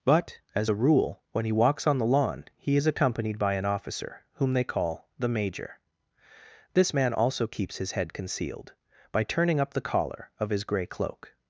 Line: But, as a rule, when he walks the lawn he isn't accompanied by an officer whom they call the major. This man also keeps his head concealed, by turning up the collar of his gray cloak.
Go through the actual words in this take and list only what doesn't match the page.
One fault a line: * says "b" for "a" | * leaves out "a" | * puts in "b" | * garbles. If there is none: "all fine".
* puts in "on"
* says "is" for "isn't"